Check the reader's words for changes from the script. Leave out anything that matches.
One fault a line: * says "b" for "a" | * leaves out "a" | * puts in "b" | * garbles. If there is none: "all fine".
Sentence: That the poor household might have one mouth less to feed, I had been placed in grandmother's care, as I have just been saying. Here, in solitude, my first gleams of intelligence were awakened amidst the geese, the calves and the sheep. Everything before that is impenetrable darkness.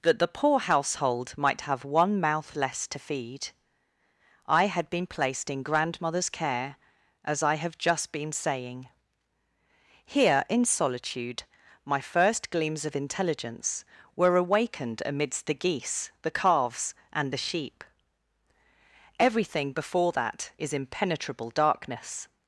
all fine